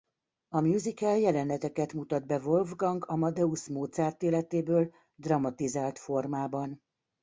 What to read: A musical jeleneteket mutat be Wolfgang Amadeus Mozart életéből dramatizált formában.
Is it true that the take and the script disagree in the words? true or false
false